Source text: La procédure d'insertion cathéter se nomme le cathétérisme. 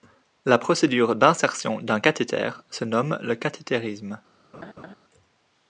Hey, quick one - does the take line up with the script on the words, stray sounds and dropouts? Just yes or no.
no